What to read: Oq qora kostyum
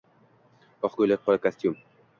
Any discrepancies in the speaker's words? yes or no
yes